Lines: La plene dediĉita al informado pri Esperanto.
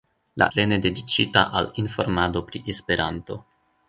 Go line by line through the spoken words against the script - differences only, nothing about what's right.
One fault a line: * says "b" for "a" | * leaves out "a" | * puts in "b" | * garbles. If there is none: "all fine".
all fine